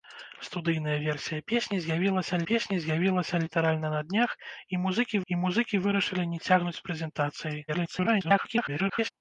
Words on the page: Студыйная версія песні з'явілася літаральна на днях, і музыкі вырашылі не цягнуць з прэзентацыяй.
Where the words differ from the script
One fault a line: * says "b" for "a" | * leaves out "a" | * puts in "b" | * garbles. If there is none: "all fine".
* puts in "песні з'явілася"
* puts in "і музыкі"
* garbles